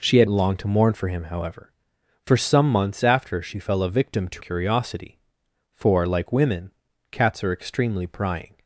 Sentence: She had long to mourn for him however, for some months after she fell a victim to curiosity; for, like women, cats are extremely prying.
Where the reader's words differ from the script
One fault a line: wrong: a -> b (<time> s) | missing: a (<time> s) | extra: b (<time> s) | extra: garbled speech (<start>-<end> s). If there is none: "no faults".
no faults